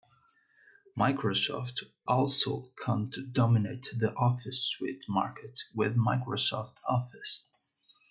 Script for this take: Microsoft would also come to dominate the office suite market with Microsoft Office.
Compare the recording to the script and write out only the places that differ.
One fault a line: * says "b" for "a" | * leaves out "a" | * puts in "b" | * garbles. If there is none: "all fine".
* leaves out "would"